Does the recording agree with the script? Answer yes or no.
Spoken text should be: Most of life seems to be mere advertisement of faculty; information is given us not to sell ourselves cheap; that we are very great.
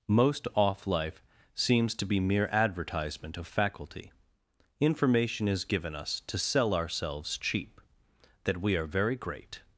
no